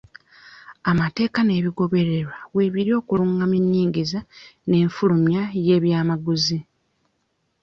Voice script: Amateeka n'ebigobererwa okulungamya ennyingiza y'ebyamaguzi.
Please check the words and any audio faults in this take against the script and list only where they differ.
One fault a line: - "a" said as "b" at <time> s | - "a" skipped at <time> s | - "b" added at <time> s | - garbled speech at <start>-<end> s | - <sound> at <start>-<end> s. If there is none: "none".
- "weebiri" added at 2.5 s
- "n'enfulumya" added at 4.7 s